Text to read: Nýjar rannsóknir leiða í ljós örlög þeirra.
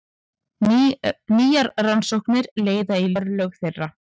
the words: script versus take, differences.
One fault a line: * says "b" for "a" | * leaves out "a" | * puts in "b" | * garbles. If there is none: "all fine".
* leaves out "ljós"